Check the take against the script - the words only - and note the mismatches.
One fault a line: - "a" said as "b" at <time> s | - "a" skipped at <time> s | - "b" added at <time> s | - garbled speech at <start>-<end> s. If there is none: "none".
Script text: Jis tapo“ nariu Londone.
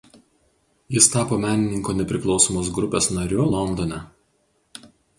- "menininkų Nepriklausomos grupės" added at 1.4 s